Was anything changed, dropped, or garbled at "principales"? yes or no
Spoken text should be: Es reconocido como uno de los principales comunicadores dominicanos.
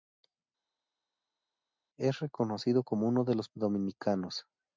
yes